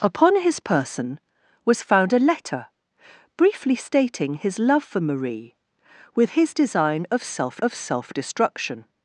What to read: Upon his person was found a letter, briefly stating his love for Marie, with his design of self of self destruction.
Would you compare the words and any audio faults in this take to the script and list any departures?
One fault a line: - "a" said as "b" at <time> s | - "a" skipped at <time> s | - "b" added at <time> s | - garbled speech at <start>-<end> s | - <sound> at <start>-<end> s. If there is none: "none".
none